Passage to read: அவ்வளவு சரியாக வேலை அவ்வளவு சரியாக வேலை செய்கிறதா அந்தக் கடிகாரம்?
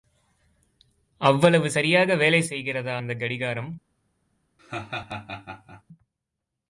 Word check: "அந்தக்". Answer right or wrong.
right